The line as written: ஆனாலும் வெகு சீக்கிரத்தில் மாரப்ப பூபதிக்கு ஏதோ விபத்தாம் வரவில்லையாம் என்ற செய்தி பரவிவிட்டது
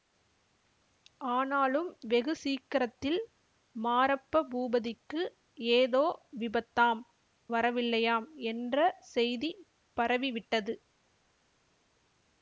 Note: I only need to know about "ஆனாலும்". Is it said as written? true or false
true